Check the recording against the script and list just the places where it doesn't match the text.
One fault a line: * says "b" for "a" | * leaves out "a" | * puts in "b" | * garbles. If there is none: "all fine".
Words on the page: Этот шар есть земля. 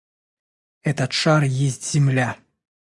all fine